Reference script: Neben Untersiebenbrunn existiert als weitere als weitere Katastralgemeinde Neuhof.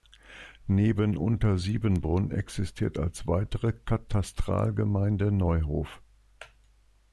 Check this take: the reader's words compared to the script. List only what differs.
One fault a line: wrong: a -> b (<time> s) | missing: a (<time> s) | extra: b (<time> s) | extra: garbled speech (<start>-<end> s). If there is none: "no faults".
missing: als weitere (3.7 s)